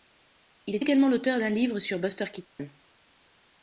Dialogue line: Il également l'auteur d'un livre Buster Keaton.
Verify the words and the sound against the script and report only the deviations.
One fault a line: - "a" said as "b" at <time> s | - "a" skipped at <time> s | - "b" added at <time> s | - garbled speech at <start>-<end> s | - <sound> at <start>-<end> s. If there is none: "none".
- "est" added at 0.7 s
- "sur" added at 1.8 s
- dropout at 2.4-2.6 s